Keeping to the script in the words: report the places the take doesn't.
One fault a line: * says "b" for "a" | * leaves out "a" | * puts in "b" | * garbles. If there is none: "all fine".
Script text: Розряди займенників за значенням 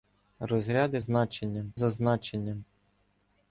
* says "значенням" for "займенників"